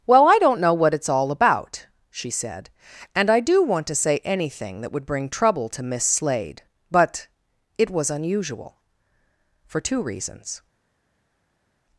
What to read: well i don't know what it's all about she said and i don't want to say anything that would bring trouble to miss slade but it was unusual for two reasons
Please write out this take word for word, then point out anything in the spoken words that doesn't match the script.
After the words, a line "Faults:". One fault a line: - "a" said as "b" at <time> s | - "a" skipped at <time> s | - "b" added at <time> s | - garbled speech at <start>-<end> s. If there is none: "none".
well i don't know what it's all about she said and i do want to say anything that would bring trouble to miss slade but it was unusual for two reasons
Faults:
- "don't" said as "do" at 3.4 s